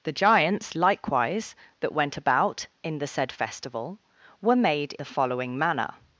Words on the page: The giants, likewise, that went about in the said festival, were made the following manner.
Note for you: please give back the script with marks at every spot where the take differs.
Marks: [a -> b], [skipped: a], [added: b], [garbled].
The giants, likewise, that went about in the said festival, were made the following manner.